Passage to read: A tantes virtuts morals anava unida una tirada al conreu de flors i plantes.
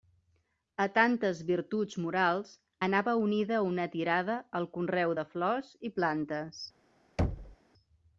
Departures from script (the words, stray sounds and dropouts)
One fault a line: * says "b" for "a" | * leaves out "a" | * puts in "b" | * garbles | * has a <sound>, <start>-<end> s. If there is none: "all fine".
* has a thud, 7.2-7.6 s